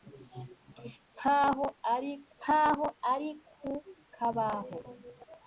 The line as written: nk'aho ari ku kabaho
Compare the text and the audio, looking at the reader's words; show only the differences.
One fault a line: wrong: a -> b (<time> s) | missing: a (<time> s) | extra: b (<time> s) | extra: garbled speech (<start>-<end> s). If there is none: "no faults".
extra: nk'aho ari (2.4 s)